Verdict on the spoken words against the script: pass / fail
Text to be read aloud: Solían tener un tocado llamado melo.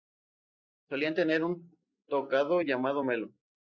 pass